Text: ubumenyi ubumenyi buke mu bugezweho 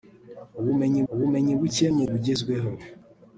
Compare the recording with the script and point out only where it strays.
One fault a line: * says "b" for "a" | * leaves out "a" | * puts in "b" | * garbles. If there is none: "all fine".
all fine